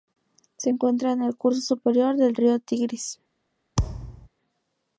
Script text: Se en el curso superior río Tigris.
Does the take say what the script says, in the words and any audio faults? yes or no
no